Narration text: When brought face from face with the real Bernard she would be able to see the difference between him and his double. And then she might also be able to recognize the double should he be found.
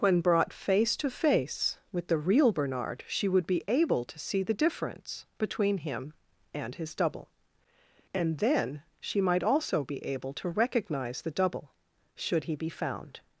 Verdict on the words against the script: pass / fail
fail